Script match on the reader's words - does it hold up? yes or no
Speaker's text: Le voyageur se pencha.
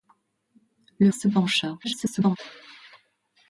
no